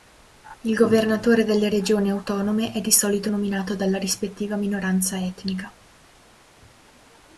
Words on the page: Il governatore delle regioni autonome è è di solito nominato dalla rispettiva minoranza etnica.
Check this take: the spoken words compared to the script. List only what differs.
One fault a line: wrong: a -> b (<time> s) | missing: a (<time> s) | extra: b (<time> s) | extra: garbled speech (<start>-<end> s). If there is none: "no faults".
missing: è (2.8 s)